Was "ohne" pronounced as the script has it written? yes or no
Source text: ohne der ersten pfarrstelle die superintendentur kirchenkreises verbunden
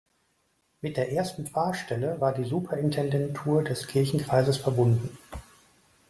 no